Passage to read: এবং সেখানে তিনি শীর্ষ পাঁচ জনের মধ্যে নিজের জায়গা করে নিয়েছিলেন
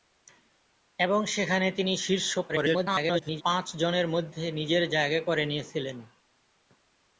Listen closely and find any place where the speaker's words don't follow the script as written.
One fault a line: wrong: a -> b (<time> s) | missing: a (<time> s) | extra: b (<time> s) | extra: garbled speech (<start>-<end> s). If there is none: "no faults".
extra: garbled speech (2.5-3.4 s)